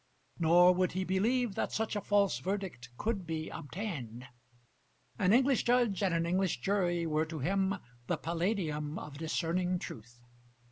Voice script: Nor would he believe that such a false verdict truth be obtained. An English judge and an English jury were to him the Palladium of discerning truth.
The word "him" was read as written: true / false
true